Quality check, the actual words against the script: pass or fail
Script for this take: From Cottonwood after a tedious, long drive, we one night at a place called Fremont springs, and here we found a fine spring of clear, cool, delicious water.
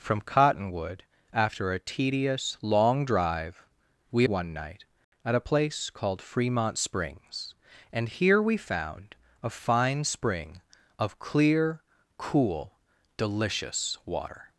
pass